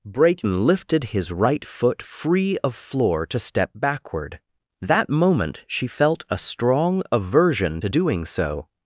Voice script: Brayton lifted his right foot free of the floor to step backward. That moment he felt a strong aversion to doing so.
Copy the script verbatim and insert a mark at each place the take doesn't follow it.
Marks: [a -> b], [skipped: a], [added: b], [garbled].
Brayton lifted his right foot free of [skipped: the] floor to step backward. That moment [he -> she] felt a strong aversion to doing so.